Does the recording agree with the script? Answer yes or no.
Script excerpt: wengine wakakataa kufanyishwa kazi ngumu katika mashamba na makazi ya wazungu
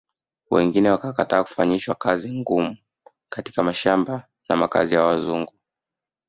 yes